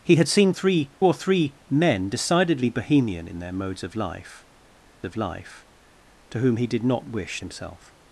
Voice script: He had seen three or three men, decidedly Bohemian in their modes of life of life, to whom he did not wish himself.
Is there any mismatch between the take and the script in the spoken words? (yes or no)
no